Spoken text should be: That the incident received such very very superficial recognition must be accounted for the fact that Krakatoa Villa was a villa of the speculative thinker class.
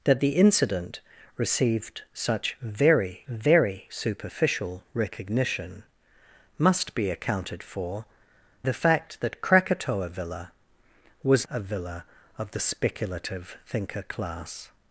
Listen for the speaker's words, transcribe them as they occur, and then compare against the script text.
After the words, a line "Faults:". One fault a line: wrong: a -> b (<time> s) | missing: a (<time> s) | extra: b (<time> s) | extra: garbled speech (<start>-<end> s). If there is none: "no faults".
That the incident received such very very superficial recognition must be accounted for the fact that Krakatoa Villa was a villa of the speculative thinker class.
Faults:
no faults